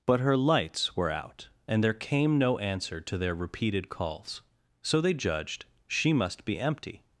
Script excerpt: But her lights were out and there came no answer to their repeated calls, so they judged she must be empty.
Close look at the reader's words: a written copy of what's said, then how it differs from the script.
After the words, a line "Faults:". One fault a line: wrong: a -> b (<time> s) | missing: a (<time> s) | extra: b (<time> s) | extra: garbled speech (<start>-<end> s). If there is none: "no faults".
But her lights were out and there came no answer to their repeated calls, so they judged she must be empty.
Faults:
no faults